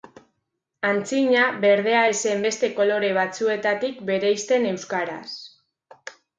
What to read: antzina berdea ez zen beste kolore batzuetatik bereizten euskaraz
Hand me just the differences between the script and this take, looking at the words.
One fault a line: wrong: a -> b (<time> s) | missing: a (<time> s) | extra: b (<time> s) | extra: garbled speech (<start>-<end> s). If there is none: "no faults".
no faults